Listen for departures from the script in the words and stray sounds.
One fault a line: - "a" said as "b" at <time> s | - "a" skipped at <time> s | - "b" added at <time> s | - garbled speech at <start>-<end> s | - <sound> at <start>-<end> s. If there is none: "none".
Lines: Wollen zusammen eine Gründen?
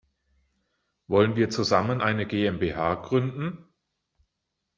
- "wir" added at 1.4 s
- "GmbH" added at 2.3 s